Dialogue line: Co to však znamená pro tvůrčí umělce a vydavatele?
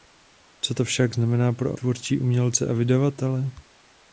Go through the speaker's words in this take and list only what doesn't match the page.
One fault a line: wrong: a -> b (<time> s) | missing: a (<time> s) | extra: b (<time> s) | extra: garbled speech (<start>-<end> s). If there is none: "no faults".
no faults